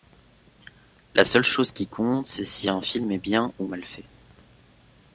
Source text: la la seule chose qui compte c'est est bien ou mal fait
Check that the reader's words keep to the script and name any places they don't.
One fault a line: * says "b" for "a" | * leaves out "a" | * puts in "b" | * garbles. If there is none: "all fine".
* leaves out "la"
* puts in "si un film"